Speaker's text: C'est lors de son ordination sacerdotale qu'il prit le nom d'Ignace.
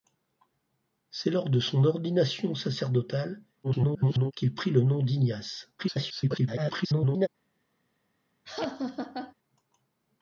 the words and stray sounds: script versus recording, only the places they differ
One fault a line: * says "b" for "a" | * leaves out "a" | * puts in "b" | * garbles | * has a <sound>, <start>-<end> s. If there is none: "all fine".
* garbles
* garbles
* has a laugh, 8.5-9.3 s